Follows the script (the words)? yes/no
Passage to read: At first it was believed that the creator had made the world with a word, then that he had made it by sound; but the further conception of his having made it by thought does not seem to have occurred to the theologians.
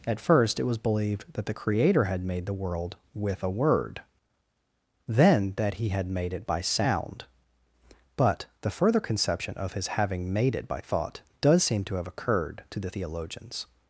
no